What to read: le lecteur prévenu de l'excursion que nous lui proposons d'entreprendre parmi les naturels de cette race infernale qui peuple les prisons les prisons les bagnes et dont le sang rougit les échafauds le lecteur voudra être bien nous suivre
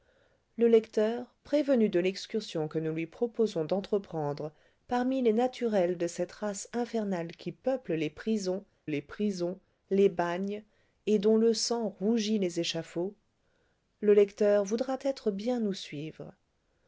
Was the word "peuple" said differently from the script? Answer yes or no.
no